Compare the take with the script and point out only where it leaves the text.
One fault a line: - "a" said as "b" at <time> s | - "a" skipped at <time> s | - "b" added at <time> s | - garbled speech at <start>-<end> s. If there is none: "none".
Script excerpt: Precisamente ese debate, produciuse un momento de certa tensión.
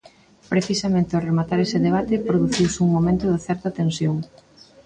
- "ao rematar" added at 1.1 s